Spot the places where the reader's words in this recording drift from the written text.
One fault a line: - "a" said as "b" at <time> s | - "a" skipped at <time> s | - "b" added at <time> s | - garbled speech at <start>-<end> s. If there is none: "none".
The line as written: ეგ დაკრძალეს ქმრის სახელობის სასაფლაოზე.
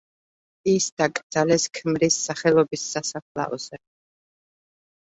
- "ეგ" said as "ის" at 0.7 s